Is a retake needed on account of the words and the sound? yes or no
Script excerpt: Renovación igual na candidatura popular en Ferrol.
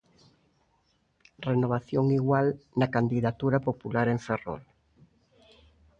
no